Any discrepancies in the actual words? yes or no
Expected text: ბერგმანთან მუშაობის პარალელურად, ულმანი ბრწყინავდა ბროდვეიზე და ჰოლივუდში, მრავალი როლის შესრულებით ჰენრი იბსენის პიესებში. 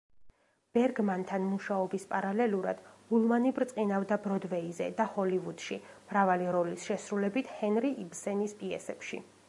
no